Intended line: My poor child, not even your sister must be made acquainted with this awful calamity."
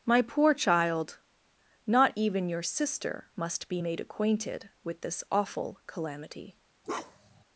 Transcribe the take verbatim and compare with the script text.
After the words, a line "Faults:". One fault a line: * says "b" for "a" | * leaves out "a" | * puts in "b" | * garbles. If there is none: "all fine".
My poor child, not even your sister must be made acquainted with this awful calamity."
Faults:
all fine